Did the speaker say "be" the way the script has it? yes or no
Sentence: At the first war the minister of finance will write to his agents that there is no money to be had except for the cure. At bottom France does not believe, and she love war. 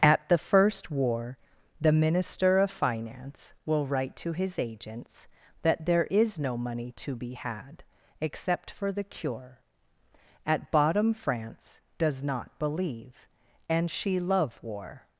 yes